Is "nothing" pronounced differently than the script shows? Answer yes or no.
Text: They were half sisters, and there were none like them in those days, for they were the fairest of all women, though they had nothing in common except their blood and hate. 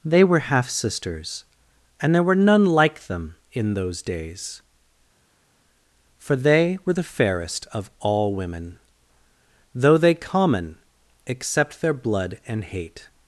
yes